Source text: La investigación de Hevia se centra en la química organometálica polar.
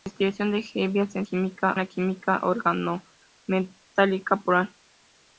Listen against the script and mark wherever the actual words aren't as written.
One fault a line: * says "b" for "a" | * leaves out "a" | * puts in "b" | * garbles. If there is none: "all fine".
* says "química" for "centra"